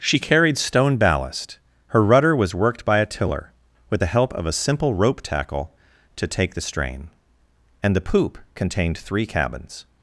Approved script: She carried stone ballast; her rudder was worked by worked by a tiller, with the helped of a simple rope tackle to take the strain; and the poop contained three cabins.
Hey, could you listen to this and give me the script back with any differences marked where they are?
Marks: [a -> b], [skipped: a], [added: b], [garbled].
She carried stone ballast; her rudder was worked by [skipped: worked by] a tiller, with the [helped -> help] of a simple rope tackle to take the strain; and the poop contained three cabins.